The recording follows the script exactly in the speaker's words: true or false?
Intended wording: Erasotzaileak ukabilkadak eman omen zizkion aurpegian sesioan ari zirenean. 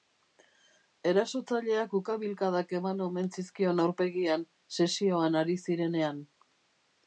true